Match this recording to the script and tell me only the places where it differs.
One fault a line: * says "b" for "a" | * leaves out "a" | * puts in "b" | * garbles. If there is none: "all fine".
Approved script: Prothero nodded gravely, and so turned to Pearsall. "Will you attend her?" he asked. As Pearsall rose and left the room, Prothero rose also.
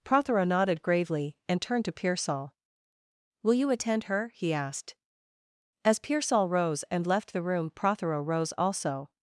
* leaves out "so"